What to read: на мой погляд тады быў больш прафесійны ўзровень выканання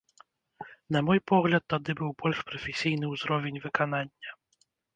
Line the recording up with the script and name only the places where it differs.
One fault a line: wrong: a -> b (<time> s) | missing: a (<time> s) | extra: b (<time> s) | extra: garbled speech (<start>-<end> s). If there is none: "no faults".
no faults